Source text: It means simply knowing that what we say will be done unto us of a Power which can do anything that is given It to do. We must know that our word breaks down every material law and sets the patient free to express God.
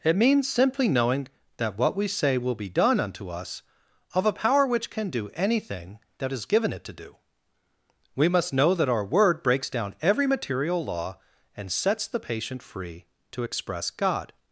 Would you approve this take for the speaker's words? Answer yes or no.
yes